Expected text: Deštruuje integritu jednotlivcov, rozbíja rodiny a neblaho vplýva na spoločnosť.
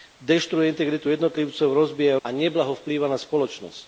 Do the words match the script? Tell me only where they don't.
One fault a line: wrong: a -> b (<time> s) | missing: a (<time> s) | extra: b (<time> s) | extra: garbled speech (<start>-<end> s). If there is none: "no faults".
missing: rodiny (2.2 s)